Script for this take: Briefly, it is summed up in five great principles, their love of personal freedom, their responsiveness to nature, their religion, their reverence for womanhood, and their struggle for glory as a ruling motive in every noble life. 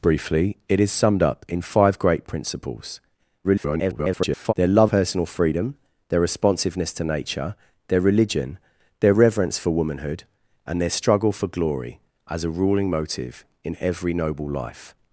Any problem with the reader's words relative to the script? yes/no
yes